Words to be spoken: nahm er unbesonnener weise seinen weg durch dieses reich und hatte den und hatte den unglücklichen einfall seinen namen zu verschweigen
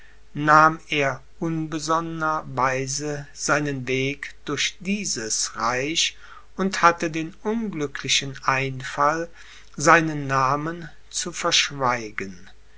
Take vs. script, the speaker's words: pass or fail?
fail